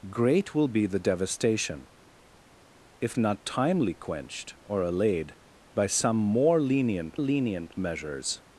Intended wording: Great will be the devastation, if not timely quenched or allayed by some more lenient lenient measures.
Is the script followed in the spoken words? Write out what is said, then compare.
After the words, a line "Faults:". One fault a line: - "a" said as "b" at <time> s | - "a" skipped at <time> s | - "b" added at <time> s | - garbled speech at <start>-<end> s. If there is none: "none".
Great will be the devastation, if not timely quenched or allayed by some more lenient lenient measures.
Faults:
none